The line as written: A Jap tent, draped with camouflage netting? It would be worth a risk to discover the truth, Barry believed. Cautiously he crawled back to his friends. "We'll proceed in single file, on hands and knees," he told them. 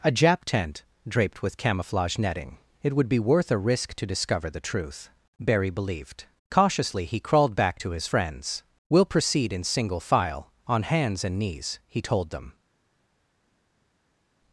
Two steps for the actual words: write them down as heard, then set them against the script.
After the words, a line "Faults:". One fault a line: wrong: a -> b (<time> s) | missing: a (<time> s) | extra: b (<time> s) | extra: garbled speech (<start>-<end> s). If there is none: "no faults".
A Jap tent, draped with camouflage netting? It would be worth a risk to discover the truth, Barry believed. Cautiously he crawled back to his friends. "We'll proceed in single file, on hands and knees," he told them.
Faults:
no faults